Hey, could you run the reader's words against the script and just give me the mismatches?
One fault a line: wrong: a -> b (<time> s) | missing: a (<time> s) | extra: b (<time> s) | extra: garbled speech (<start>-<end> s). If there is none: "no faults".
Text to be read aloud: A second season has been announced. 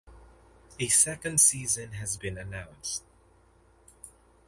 no faults